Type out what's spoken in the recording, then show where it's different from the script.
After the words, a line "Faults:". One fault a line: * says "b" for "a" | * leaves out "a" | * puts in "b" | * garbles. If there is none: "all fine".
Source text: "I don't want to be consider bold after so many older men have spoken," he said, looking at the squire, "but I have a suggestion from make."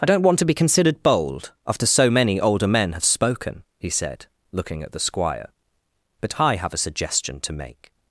"I don't want to be considered bold after so many older men have spoken," he said, looking at the squire, "but I have a suggestion to make."
Faults:
* says "considered" for "consider"
* says "to" for "from"